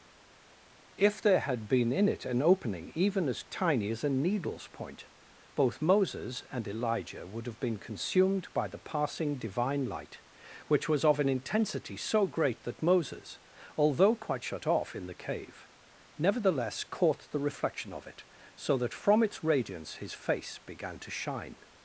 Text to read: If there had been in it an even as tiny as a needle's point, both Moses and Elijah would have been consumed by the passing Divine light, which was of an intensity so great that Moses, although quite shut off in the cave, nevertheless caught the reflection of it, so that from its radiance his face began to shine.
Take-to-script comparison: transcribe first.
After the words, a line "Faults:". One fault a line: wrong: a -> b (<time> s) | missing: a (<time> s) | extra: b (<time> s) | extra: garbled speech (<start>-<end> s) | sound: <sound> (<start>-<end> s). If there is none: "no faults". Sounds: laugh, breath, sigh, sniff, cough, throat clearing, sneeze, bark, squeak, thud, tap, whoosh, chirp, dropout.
If there had been in it an opening even as tiny as a needle's point, both Moses and Elijah would have been consumed by the passing Divine light, which was of an intensity so great that Moses, although quite shut off in the cave, nevertheless caught the reflection of it, so that from its radiance his face began to shine.
Faults:
extra: opening (2.4 s)